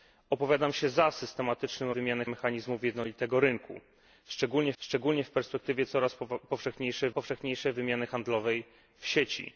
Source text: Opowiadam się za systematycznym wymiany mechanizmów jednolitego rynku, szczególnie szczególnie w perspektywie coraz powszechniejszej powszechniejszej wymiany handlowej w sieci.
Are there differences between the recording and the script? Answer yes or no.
no